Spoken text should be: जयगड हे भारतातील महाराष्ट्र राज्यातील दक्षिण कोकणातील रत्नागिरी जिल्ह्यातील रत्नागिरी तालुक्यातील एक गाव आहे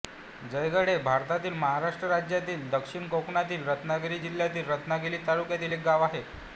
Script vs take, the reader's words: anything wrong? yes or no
no